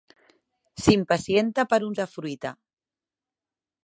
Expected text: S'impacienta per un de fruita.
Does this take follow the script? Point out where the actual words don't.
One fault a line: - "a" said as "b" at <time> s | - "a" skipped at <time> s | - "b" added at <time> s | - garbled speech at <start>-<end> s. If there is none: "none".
none